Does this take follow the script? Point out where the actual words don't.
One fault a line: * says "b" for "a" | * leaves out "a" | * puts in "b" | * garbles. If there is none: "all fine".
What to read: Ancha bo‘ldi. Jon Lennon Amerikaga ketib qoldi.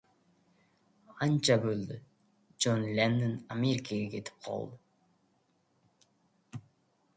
all fine